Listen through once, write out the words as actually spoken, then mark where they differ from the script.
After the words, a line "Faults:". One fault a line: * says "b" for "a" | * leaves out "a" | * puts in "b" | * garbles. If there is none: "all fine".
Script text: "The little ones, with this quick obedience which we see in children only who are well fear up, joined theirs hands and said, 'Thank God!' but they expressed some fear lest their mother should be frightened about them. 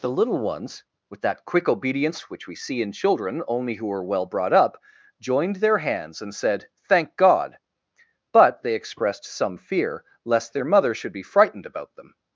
"The little ones, with that quick obedience which we see in children only who are well brought up, joined their hands and said, 'Thank God!' but they expressed some fear lest their mother should be frightened about them.
Faults:
* says "that" for "this"
* says "brought" for "fear"
* says "their" for "theirs"